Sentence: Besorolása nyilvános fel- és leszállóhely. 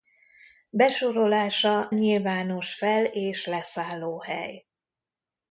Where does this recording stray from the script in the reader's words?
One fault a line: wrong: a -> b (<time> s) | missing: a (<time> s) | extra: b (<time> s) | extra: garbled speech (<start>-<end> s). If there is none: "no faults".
no faults